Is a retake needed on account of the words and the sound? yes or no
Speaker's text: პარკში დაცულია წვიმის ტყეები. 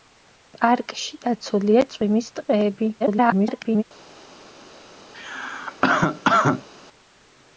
yes